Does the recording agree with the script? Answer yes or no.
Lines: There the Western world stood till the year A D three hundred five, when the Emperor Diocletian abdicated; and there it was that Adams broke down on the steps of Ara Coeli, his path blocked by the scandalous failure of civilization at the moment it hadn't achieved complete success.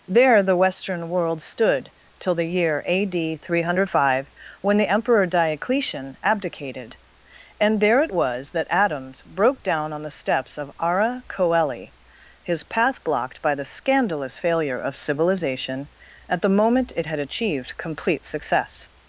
no